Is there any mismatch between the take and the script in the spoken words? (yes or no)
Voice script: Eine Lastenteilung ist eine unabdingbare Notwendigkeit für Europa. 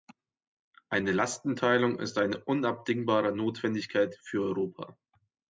no